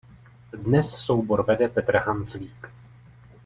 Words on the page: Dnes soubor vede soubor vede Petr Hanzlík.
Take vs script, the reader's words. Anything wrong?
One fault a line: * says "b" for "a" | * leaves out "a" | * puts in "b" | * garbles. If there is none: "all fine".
* leaves out "soubor vede"